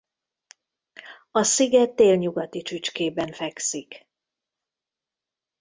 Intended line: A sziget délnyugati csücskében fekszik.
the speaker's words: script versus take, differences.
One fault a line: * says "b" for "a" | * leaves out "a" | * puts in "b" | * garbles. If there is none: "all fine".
all fine